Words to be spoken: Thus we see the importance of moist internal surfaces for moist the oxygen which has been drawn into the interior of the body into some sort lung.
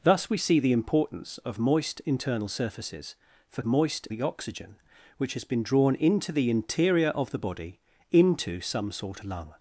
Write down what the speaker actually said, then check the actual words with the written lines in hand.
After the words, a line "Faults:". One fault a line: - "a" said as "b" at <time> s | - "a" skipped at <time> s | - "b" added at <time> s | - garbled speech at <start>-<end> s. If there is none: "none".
Thus we see the importance of moist internal surfaces for moist the oxygen which has been drawn into the interior of the body into some sort lung.
Faults:
none